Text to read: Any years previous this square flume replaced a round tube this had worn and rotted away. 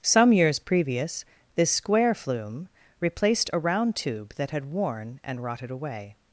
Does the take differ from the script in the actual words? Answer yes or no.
yes